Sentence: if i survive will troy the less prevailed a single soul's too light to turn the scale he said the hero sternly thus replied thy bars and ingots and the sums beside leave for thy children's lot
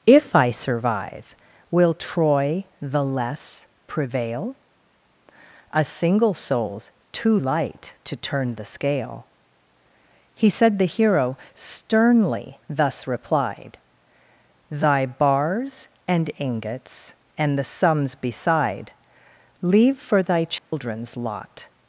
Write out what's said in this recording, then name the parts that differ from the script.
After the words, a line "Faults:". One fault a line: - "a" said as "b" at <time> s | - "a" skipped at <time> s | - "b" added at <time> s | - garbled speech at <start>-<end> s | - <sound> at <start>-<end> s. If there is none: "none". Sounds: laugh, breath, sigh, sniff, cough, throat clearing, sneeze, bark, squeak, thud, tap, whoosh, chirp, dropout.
if i survive will troy the less prevail a single soul's too light to turn the scale he said the hero sternly thus replied thy bars and ingots and the sums beside leave for thy children's lot
Faults:
- "prevailed" said as "prevail" at 3.9 s
- dropout at 20.6-20.7 s